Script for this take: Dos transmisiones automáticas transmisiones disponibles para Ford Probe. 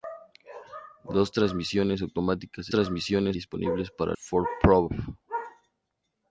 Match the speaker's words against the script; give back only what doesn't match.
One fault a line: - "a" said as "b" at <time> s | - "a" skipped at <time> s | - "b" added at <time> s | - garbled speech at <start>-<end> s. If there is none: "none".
none